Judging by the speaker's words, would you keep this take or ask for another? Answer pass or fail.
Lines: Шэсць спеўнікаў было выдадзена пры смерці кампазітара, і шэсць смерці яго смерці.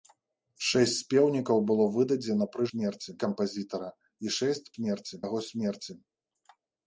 pass